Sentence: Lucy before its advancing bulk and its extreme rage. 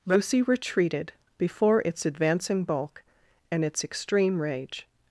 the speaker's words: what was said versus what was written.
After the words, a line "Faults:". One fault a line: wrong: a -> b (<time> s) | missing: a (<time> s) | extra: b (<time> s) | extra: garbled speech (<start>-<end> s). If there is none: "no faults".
Lucy retreated before its advancing bulk and its extreme rage.
Faults:
extra: retreated (0.4 s)